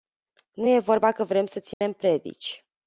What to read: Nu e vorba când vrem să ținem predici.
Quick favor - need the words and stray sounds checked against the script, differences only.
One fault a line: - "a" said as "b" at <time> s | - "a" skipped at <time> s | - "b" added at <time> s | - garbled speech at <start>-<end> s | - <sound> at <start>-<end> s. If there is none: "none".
- "când" said as "că" at 1.1 s
- dropout at 1.7-1.8 s